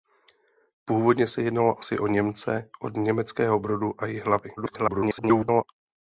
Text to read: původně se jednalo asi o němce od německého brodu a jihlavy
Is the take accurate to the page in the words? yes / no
no